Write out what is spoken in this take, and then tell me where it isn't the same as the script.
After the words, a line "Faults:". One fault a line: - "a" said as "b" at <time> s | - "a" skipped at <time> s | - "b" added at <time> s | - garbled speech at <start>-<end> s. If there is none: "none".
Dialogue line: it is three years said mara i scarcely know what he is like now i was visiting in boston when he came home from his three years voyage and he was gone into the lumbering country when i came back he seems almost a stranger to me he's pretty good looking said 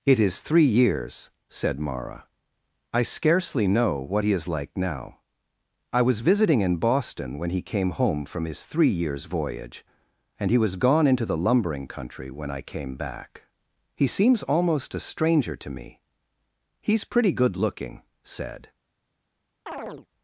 it is three years said mara i scarcely know what he is like now i was visiting in boston when he came home from his three years voyage and he was gone into the lumbering country when i came back he seems almost a stranger to me he's pretty good looking said
Faults:
none